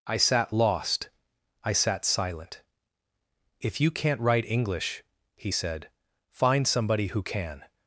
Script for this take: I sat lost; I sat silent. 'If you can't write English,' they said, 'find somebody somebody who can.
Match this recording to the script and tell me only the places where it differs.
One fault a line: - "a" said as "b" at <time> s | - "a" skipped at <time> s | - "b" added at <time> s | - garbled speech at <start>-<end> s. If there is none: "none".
- "they" said as "he" at 5.4 s
- "somebody" skipped at 7.1 s